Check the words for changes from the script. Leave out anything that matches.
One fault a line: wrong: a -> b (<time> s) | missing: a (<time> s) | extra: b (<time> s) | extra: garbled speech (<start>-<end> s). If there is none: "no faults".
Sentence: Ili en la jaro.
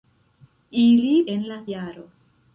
no faults